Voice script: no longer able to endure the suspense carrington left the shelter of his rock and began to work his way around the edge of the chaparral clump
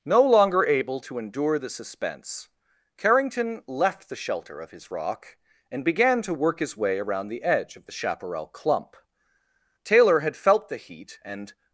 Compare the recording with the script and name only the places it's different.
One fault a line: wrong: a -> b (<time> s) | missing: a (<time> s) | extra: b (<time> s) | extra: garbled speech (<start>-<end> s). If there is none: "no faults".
extra: taylor had felt the heat and (9.8 s)